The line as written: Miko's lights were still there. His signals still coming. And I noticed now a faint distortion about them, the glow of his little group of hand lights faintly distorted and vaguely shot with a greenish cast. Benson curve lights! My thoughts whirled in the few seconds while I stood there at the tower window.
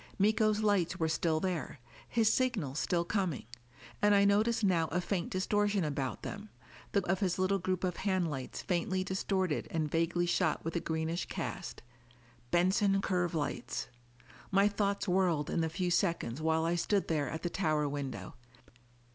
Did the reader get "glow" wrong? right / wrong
wrong